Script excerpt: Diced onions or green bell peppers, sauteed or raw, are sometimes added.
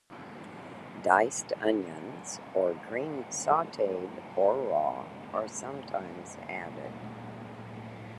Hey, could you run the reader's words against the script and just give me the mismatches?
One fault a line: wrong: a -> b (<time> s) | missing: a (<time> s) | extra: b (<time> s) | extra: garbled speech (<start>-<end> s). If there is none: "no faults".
missing: bell peppers (3.2 s)